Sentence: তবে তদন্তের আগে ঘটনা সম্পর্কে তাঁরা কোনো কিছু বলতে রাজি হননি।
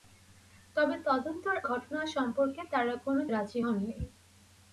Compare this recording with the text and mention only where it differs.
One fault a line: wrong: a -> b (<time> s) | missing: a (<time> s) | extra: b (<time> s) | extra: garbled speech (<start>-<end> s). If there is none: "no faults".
missing: আগে (1.6 s)
missing: কিছু বলতে (3.2 s)